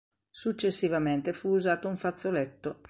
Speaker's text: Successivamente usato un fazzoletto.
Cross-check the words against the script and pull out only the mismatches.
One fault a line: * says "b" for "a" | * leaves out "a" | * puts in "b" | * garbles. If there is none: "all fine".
* puts in "fu"